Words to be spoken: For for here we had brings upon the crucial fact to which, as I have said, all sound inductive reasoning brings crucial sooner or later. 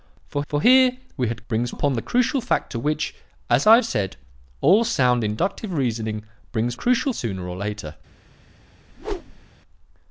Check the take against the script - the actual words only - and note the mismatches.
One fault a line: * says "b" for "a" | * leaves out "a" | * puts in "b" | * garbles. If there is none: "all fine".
all fine